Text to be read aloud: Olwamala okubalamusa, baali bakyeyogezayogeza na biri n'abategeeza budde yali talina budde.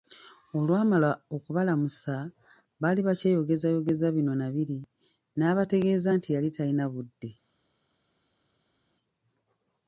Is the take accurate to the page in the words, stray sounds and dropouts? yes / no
no